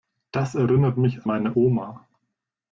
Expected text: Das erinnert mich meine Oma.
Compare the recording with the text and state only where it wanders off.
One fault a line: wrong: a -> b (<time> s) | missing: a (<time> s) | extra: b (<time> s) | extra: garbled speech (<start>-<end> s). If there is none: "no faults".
no faults